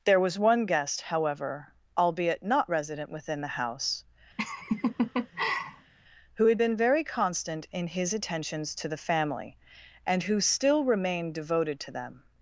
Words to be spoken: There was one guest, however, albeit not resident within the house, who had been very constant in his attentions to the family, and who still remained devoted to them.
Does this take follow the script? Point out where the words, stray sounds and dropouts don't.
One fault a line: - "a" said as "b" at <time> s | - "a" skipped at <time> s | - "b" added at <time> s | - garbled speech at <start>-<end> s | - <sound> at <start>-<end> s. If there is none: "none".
- laugh at 4.4-5.9 s